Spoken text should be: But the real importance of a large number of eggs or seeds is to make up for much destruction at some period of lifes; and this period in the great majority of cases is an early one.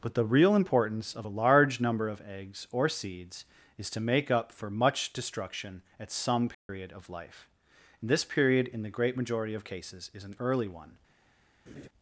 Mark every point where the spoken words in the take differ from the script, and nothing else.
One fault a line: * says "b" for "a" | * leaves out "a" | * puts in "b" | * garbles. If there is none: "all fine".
* says "life" for "lifes"